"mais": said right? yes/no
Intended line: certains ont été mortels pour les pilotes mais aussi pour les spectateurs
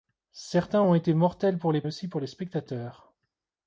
no